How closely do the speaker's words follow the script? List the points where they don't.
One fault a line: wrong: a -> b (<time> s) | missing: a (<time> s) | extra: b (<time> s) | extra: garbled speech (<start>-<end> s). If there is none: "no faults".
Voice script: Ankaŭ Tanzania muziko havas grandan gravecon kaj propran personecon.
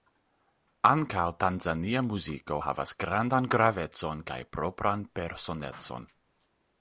no faults